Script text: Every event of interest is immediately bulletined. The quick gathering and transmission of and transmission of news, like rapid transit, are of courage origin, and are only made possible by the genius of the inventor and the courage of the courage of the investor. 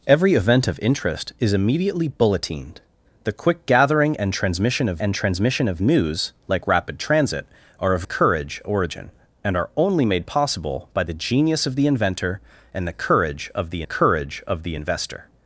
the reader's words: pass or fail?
pass